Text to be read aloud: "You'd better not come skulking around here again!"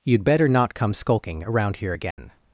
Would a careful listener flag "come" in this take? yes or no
no